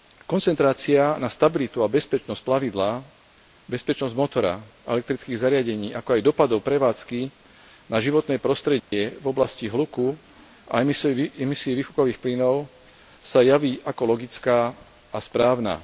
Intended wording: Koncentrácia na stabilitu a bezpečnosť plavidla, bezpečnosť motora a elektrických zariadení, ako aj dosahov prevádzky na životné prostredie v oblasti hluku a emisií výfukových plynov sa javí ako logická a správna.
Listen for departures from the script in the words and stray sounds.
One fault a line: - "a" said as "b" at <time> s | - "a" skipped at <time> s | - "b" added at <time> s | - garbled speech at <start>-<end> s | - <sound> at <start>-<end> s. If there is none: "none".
- dropout at 8.8-8.9 s